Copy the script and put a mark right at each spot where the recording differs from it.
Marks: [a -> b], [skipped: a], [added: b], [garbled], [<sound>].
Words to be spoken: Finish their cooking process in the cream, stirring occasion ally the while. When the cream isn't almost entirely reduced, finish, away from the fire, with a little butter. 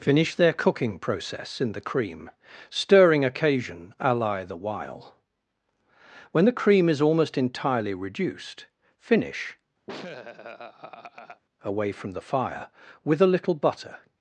Finish their cooking process in the cream, stirring occasion ally the while. When the cream [isn't -> is] almost entirely reduced, finish, [laugh] away from the fire, with a little butter.